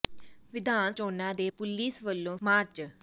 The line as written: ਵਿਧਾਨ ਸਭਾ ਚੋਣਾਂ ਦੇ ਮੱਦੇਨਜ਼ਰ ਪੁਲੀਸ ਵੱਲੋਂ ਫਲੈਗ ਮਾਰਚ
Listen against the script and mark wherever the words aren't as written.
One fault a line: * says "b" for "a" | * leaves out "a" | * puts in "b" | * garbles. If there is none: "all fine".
* leaves out "ਸਭਾ"
* leaves out "ਮੱਦੇਨਜ਼ਰ"
* leaves out "ਫਲੈਗ"